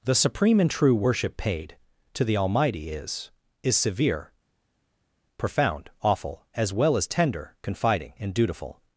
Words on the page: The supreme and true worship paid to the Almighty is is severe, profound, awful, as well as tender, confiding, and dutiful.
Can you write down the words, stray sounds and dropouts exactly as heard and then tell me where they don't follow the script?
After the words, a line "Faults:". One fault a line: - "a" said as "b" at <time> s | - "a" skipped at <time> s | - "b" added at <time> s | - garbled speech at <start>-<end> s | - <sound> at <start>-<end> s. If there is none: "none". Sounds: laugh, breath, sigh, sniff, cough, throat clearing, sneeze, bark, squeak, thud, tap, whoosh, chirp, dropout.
The supreme and true worship paid to the Almighty is is severe, profound, awful, as well as tender, confiding, and dutiful.
Faults:
none